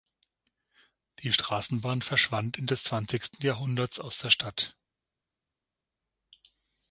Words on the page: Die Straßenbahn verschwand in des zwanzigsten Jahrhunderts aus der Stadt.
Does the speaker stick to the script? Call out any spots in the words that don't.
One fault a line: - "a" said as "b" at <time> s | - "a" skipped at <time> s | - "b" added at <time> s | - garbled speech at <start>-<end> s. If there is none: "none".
none